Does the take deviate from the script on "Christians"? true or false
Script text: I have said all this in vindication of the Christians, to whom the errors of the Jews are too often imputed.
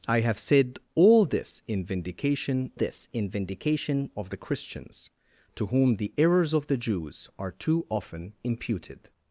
false